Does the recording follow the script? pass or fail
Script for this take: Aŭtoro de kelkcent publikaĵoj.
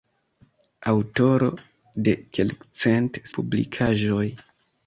pass